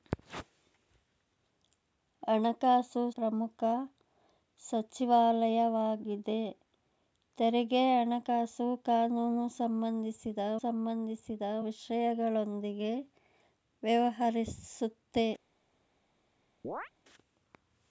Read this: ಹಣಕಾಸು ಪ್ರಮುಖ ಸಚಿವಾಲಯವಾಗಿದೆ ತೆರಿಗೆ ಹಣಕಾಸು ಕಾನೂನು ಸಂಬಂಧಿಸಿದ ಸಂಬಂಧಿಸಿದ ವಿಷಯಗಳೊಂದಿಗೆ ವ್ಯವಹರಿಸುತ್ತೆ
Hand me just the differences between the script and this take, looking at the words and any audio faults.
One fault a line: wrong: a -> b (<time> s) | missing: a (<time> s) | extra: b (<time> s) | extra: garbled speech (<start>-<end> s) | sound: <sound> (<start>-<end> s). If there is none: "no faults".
sound: chirp (16.6-16.9 s)